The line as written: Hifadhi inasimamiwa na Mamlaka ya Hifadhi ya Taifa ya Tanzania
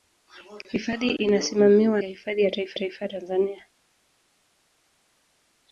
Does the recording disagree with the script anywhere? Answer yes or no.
yes